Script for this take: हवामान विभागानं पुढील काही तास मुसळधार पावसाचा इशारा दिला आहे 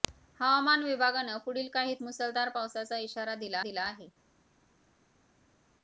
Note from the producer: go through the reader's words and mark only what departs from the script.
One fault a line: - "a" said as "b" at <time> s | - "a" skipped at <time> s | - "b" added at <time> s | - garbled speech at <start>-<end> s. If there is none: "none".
- "तास" skipped at 1.9 s
- "दिला" added at 3.6 s